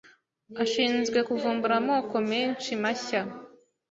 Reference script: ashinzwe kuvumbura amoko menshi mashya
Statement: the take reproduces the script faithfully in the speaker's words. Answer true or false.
true